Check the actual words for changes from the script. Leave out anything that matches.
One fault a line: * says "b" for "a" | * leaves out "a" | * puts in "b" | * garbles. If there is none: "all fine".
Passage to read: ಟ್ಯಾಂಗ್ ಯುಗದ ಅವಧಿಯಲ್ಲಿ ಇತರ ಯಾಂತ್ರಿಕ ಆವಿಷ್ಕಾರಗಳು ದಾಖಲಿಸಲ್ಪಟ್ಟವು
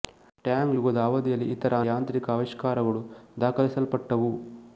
all fine